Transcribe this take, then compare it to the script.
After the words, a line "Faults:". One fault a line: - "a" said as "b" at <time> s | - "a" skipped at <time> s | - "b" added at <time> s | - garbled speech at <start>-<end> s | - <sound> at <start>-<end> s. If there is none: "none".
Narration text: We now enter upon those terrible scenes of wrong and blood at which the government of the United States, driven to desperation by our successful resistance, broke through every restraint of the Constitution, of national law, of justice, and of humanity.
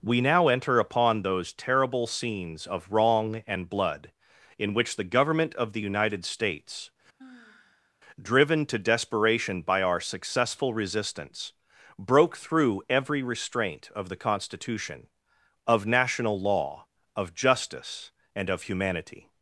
We now enter upon those terrible scenes of wrong and blood in which the government of the United States, driven to desperation by our successful resistance, broke through every restraint of the Constitution, of national law, of justice, and of humanity.
Faults:
- "at" said as "in" at 4.6 s
- sigh at 7.2-7.9 s